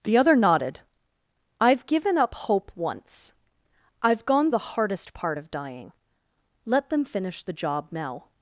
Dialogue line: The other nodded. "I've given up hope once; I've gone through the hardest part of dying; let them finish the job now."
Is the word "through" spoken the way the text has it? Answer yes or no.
no